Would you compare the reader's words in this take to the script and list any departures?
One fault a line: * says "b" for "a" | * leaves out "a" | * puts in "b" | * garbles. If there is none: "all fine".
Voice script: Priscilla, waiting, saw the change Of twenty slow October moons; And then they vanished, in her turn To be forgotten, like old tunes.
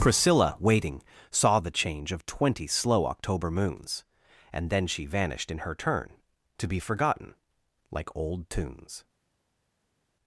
* says "she" for "they"